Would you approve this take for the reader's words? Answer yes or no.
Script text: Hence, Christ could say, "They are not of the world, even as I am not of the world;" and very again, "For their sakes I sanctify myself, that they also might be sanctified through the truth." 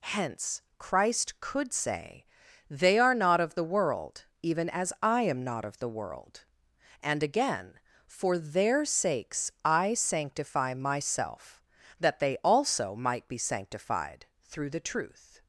no